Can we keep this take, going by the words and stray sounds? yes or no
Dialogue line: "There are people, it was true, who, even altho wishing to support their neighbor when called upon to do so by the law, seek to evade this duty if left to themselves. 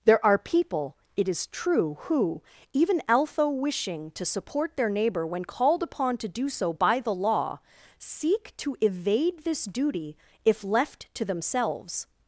no